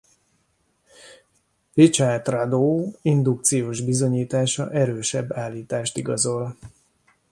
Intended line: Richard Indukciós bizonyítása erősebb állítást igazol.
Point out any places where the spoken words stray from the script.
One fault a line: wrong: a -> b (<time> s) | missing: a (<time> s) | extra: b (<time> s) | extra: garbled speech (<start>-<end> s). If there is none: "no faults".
extra: Rado (2.3 s)